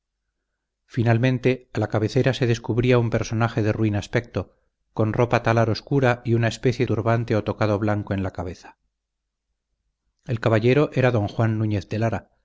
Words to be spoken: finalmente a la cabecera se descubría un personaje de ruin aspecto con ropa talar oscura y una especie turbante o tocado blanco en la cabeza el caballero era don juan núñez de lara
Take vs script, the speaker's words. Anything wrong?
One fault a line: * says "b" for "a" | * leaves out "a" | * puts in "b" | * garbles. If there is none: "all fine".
all fine